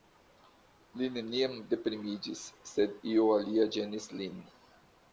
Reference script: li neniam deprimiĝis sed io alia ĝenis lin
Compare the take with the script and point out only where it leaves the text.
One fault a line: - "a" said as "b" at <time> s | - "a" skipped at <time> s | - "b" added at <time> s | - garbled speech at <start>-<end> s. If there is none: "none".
none